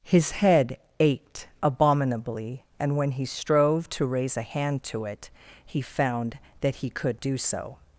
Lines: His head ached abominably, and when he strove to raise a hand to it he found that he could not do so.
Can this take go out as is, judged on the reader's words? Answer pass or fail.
fail